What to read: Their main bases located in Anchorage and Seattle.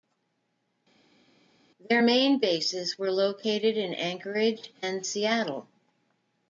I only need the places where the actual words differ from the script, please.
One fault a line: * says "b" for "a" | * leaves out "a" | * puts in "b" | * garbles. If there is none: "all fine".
* puts in "were"